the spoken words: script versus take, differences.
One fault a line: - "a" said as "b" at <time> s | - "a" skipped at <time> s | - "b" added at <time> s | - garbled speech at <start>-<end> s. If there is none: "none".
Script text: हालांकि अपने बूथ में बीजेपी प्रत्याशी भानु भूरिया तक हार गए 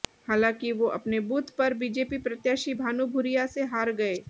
- "वो" added at 0.7 s
- "में" said as "पर" at 1.6 s
- "तक" said as "से" at 3.5 s